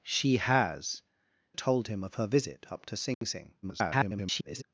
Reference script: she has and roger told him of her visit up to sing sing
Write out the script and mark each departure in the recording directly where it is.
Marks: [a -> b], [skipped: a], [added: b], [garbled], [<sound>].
she has [skipped: and roger] told him of her visit up to sing [dropout] sing [garbled]